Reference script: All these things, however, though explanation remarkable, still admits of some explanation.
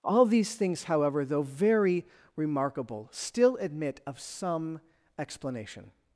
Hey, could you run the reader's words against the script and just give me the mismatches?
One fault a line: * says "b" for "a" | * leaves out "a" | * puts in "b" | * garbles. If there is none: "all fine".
* says "very" for "explanation"
* says "admit" for "admits"